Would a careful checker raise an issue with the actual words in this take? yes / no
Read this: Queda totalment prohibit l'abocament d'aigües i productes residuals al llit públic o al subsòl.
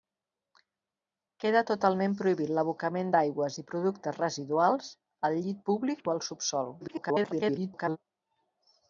yes